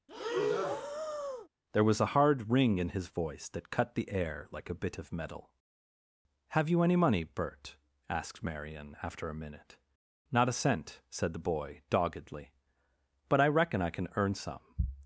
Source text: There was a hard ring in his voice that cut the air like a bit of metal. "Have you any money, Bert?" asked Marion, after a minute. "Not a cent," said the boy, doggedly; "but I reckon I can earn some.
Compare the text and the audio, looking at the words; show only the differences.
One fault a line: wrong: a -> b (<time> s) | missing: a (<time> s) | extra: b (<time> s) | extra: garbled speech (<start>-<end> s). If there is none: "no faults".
no faults